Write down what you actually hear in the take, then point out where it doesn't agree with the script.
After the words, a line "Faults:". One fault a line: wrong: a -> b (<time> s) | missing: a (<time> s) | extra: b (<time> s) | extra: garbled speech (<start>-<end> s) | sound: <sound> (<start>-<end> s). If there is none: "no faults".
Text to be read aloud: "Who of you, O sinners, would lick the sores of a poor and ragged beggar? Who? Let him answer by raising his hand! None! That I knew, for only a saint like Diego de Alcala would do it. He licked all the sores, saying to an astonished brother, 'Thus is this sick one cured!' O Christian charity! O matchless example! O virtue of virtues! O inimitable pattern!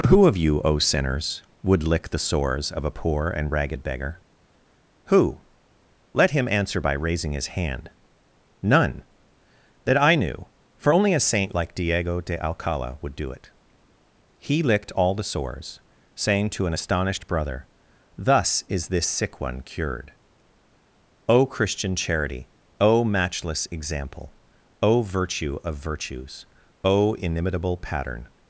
"Who of you, O sinners, would lick the sores of a poor and ragged beggar? Who? Let him answer by raising his hand! None! That I knew, for only a saint like Diego de Alcala would do it. He licked all the sores, saying to an astonished brother, 'Thus is this sick one cured!' O Christian charity! O matchless example! O virtue of virtues! O inimitable pattern!
Faults:
no faults